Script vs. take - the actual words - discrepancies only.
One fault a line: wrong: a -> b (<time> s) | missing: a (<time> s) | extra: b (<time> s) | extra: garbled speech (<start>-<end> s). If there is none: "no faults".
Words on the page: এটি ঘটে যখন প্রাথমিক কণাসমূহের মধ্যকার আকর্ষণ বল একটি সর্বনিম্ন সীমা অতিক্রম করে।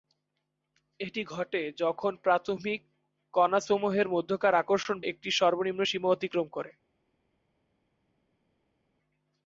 missing: বল (5.0 s)